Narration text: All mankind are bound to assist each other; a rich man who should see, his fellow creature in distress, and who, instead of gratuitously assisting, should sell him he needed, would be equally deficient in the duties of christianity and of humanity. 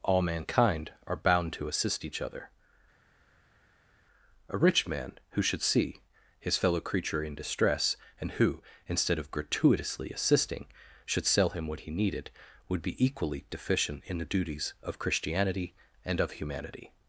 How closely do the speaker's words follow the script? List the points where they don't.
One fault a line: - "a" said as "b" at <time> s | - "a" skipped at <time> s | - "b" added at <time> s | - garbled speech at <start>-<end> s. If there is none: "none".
- "what" added at 11.7 s